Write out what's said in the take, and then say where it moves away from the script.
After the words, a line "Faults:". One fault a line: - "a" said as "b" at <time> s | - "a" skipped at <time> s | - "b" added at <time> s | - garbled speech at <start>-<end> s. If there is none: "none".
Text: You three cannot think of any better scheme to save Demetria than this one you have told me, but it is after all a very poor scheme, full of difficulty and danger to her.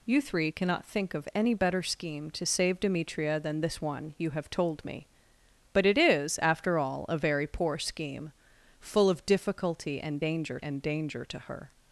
You three cannot think of any better scheme to save Demetria than this one you have told me, but it is after all a very poor scheme, full of difficulty and danger and danger to her.
Faults:
- "and danger" added at 10.6 s